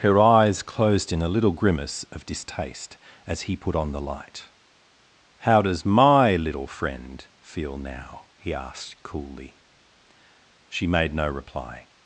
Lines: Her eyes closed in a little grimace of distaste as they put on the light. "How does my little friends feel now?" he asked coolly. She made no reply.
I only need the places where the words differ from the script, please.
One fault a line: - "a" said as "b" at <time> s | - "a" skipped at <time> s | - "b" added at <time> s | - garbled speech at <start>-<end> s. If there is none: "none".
- "they" said as "he" at 3.4 s
- "friends" said as "friend" at 6.7 s